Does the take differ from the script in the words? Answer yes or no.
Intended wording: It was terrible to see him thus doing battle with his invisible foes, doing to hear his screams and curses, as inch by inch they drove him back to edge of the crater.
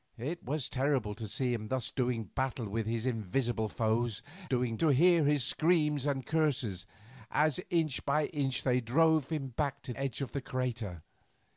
no